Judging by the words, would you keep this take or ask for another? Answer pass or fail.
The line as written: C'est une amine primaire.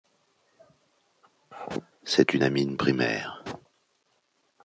pass